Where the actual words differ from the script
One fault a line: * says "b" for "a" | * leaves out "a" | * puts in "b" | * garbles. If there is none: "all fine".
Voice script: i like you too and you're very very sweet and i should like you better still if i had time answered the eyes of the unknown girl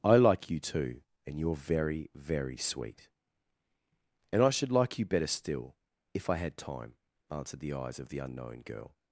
all fine